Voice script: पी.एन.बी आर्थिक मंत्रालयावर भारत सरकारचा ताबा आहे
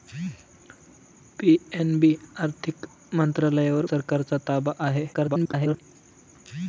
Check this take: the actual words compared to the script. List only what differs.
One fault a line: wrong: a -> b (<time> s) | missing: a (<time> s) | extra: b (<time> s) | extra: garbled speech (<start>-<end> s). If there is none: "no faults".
missing: भारत (3.9 s)
extra: garbled speech (5.1-5.8 s)